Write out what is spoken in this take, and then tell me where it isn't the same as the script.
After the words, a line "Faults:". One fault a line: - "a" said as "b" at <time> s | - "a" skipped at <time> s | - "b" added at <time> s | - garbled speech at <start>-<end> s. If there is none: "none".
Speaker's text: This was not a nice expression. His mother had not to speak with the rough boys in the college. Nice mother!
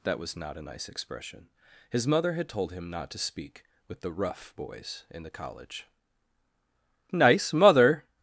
That was not a nice expression. His mother had told him not to speak with the rough boys in the college. Nice mother!
Faults:
- "This" said as "That" at 0.0 s
- "told him" added at 2.5 s